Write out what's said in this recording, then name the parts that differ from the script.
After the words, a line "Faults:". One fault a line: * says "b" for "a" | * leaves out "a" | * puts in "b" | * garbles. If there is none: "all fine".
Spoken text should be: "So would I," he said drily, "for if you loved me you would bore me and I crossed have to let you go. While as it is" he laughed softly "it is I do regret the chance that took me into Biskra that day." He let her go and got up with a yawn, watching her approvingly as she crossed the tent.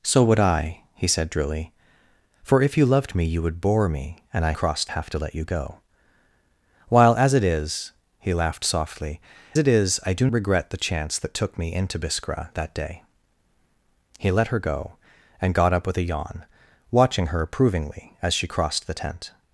"So would I," he said drily, "for if you loved me you would bore me and I crossed have to let you go. While as it is" he laughed softly "it is I do regret the chance that took me into Biskra that day." He let her go and got up with a yawn, watching her approvingly as she crossed the tent.
Faults:
all fine